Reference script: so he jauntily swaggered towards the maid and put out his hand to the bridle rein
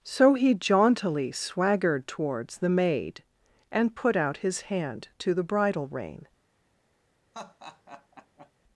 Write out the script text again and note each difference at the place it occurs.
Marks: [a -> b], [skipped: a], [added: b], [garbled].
so he jauntily swaggered towards the maid and put out his hand to the bridle rein